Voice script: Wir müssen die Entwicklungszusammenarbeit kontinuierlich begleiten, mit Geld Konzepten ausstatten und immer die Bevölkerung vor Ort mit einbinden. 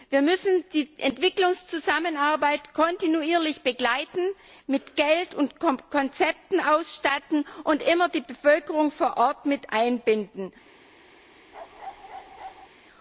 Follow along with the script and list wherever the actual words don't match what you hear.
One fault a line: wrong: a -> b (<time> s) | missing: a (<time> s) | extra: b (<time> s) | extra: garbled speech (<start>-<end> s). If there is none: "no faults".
extra: und (5.3 s)